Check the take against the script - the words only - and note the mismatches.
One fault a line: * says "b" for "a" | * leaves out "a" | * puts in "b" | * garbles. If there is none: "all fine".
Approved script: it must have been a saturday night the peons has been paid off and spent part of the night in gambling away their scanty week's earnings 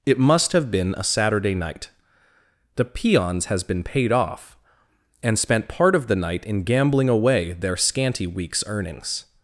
all fine